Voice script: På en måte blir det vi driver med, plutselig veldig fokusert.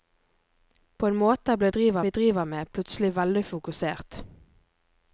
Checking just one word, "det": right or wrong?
wrong